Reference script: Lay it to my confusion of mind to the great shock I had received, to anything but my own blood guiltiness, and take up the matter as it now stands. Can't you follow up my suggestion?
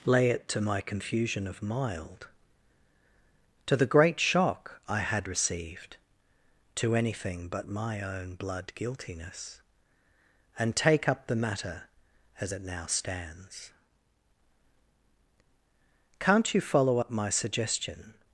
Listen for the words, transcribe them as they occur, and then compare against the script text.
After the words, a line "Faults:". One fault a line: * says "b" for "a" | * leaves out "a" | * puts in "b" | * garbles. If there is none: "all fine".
Lay it to my confusion of mild to the great shock I had received, to anything but my own blood guiltiness, and take up the matter as it now stands. Can't you follow up my suggestion?
Faults:
* says "mild" for "mind"